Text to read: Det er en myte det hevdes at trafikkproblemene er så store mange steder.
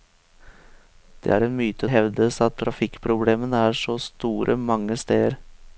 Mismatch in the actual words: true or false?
false